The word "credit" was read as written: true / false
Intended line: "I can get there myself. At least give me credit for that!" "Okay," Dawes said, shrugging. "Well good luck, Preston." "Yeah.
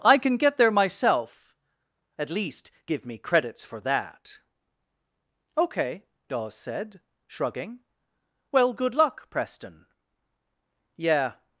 false